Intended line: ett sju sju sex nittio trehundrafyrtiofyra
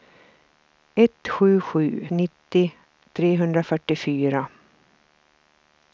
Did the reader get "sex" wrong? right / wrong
wrong